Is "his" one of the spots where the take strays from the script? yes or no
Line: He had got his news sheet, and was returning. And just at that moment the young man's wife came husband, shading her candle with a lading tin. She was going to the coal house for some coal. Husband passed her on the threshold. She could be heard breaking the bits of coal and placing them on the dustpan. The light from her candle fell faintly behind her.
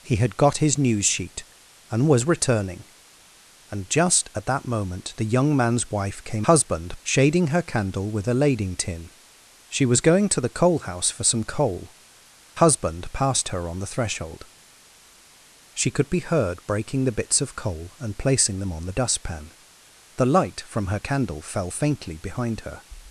no